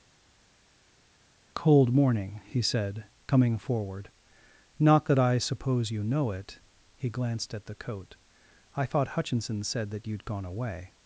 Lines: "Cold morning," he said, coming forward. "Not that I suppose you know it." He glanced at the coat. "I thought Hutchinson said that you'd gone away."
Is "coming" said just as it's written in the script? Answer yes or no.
yes